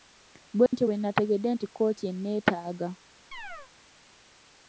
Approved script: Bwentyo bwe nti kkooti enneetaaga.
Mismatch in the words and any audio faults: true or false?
true